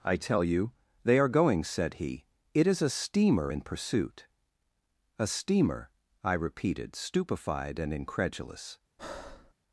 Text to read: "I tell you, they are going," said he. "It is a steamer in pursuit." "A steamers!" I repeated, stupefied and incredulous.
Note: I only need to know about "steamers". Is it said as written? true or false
false